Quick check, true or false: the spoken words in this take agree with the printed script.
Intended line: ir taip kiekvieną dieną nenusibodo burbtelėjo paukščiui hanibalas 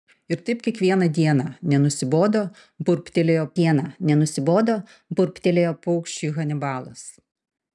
false